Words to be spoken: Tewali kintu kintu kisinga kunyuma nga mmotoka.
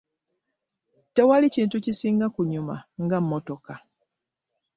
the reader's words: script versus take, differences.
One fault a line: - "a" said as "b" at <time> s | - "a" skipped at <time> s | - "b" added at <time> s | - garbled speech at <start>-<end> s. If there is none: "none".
- "kintu" skipped at 1.8 s